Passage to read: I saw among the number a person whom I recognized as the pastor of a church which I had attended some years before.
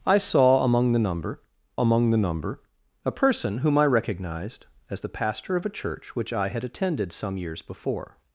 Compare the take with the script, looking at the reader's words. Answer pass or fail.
fail